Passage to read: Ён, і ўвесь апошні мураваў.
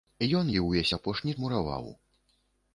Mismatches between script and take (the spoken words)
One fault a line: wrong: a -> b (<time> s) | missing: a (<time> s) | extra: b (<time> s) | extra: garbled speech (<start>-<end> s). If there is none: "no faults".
no faults